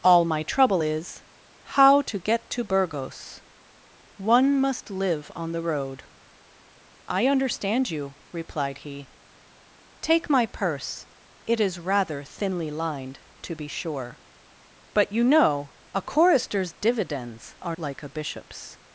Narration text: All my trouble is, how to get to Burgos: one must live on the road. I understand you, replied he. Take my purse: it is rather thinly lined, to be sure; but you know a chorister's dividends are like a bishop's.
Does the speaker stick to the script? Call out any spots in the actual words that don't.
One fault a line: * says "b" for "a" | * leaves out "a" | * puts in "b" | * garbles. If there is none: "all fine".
all fine